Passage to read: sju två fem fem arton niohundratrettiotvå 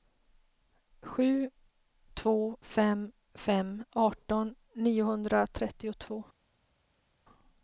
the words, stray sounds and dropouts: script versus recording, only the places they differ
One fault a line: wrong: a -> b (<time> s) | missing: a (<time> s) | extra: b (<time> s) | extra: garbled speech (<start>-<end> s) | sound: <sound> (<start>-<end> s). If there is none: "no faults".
no faults